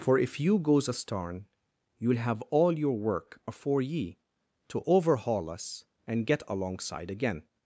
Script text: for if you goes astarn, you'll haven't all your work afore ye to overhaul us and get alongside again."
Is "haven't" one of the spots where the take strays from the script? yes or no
yes